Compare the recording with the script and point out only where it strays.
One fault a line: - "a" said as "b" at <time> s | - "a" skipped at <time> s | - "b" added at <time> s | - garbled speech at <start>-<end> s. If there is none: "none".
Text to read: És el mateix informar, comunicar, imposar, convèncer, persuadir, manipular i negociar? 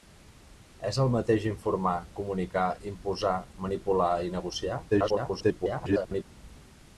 - "convèncer persuadir" skipped at 3.4 s
- garbled speech at 4.9-6.2 s